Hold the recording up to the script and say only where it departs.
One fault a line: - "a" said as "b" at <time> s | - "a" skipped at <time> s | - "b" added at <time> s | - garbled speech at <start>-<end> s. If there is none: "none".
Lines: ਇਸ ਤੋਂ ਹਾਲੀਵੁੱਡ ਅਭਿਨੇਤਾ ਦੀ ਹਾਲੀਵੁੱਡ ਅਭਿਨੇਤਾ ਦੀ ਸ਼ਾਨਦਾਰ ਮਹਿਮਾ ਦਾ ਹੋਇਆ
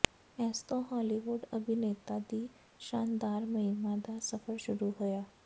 - "ਹਾਲੀਵੁੱਡ ਅਭਿਨੇਤਾ ਦੀ" skipped at 2.5 s
- "ਸਫ਼ਰ ਸ਼ੁਰੂ" added at 4.2 s